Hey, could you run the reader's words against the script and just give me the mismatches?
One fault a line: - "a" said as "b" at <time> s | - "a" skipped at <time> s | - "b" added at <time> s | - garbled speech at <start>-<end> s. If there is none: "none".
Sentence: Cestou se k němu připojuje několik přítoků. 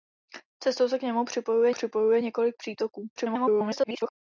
- "připojuje" added at 1.7 s
- garbled speech at 3.2-4.1 s